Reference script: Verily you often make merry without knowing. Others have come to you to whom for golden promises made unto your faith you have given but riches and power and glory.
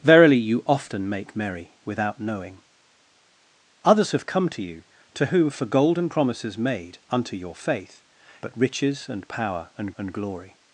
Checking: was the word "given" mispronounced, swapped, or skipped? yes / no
yes